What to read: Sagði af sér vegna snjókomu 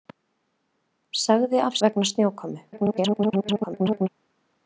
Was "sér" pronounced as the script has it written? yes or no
no